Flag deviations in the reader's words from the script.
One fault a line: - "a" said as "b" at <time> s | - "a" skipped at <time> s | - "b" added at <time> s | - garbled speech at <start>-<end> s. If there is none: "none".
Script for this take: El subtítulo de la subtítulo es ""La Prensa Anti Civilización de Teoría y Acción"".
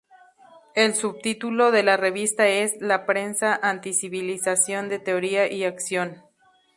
- "subtítulo" said as "revista" at 1.9 s